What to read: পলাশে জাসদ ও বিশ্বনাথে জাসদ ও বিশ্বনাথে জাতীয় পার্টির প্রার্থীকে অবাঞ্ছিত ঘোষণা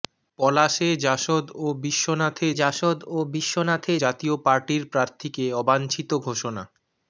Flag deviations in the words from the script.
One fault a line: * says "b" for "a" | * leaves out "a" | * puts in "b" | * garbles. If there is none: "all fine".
all fine